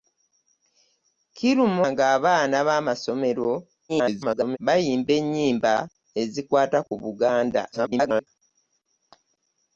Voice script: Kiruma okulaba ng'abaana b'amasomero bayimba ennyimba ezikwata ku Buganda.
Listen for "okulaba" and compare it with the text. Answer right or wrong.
wrong